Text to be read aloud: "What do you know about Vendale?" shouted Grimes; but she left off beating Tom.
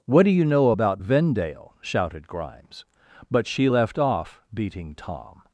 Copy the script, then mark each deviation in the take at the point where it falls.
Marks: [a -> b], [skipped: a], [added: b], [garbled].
"What do you know about Vendale?" shouted Grimes; but she left off beating Tom.